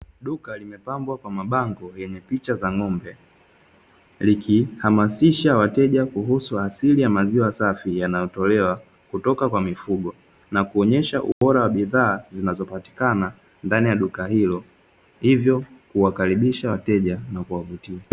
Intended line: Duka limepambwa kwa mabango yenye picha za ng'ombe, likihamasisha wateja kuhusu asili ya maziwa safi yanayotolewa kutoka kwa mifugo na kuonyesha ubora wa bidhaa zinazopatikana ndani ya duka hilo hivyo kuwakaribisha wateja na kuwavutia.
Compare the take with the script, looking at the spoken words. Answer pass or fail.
pass